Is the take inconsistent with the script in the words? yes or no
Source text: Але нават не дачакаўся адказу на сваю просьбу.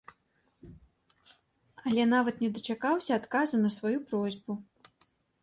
no